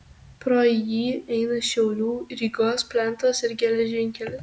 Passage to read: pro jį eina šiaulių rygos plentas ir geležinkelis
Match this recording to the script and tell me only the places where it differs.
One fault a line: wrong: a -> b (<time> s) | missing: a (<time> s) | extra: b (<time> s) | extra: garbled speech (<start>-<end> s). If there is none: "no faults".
no faults